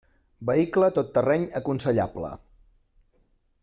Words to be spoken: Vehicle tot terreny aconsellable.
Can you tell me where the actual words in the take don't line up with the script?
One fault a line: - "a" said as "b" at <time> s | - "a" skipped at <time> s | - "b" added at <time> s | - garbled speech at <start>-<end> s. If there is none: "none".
none